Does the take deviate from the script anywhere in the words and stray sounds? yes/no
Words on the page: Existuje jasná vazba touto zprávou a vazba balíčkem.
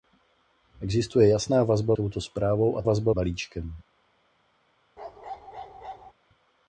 yes